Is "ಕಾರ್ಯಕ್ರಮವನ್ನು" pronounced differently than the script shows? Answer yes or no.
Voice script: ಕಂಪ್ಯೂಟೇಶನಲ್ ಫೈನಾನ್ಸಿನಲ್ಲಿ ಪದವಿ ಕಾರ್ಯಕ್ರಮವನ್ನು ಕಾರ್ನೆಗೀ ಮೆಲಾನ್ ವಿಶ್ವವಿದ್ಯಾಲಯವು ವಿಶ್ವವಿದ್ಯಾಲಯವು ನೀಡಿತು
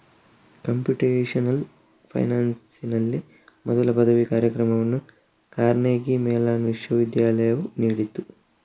no